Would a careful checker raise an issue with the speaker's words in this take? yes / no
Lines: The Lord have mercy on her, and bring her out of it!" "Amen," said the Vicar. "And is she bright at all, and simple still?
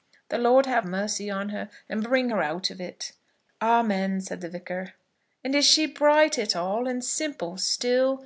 no